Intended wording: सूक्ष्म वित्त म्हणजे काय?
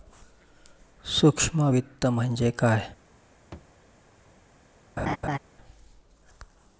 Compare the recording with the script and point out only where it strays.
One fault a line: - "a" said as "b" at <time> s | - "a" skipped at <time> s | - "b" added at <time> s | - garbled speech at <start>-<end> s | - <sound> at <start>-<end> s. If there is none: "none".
- thud at 3.5-3.7 s
- laugh at 5.0-5.4 s